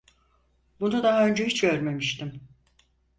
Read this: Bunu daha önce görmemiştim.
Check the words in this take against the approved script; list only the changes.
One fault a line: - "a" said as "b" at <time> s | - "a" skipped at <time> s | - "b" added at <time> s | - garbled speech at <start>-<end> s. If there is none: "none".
- "hiç" added at 1.5 s